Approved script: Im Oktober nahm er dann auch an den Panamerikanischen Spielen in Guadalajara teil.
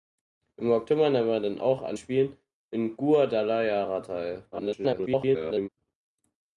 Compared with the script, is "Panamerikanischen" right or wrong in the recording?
wrong